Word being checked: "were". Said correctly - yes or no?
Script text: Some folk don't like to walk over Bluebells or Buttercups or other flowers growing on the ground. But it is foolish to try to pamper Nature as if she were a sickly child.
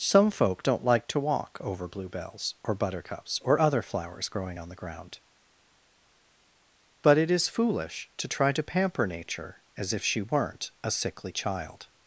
no